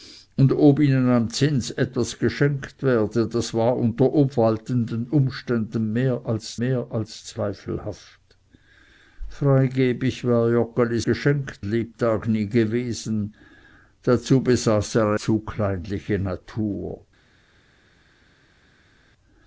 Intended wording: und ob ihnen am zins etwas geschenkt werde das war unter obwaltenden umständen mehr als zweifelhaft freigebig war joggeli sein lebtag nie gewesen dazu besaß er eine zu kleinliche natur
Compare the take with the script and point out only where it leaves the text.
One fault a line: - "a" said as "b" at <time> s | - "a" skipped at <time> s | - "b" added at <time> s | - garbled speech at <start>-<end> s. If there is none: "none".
- "mehr als" added at 6.6 s
- "sein" said as "geschenkt" at 11.0 s
- "eine" skipped at 15.1 s